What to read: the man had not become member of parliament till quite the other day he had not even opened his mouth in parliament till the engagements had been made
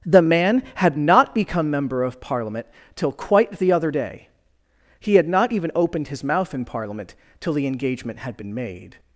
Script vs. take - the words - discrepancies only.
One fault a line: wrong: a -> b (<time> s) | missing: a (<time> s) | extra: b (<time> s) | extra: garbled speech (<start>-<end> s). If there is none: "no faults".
wrong: engagements -> engagement (7.7 s)